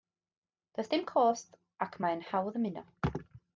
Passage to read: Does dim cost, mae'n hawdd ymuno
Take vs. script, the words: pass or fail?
fail